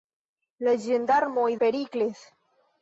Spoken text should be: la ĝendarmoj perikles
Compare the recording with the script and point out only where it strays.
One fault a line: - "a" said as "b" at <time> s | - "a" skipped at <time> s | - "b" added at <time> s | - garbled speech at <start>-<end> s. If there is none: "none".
none